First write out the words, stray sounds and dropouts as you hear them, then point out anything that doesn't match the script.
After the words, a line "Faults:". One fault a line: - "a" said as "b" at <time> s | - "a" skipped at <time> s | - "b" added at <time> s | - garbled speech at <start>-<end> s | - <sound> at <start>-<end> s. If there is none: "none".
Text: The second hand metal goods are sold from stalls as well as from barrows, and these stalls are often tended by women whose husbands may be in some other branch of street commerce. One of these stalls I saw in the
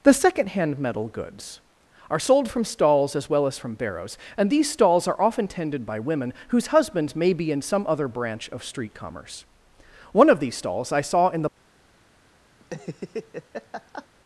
The second hand metal goods are sold from stalls as well as from barrows, and these stalls are often tended by women whose husbands may be in some other branch of street commerce. One of these stalls I saw in the
Faults:
- laugh at 12.6-14.1 s